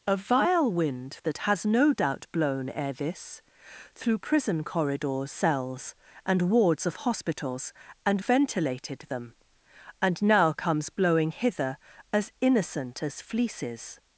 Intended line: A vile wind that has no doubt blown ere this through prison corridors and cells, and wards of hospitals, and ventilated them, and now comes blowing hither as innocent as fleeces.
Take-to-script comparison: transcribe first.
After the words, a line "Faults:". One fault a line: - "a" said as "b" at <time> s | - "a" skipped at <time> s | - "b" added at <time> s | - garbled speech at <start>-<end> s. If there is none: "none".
A vile wind that has no doubt blown ere this through prison corridors cells, and wards of hospitals, and ventilated them, and now comes blowing hither as innocent as fleeces.
Faults:
- "and" skipped at 5.3 s